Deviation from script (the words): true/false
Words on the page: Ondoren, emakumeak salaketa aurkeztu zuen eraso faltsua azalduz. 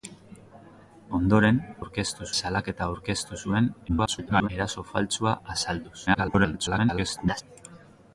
true